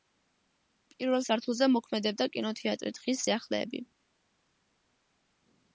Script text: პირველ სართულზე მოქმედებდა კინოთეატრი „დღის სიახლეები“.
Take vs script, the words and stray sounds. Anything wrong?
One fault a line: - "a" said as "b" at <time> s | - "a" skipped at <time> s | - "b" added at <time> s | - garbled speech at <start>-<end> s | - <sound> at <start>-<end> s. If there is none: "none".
none